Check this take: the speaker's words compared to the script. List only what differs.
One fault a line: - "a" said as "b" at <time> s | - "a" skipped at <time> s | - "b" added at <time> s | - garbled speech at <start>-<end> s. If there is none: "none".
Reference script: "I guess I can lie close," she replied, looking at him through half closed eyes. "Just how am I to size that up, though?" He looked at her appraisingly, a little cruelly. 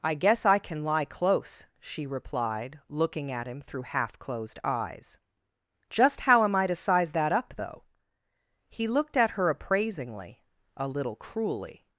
none